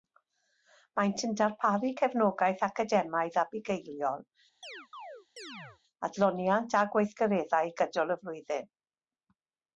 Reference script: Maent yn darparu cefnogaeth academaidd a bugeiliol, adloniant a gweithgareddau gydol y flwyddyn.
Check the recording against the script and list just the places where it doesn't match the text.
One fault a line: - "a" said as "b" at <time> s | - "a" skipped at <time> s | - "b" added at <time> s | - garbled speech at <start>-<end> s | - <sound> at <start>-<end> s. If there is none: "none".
- chirp at 4.6-5.8 s